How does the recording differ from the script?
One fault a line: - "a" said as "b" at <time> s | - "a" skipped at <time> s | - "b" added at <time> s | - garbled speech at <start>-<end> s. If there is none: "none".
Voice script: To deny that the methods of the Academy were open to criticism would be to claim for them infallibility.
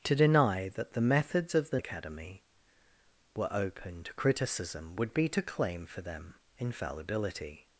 none